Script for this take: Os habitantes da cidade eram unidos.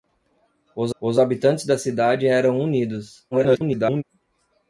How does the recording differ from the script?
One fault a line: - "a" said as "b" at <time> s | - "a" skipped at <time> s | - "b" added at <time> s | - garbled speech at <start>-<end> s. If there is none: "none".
- "os" added at 1.0 s
- garbled speech at 3.3-4.0 s